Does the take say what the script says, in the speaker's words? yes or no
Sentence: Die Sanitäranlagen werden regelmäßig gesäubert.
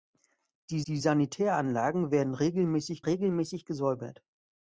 no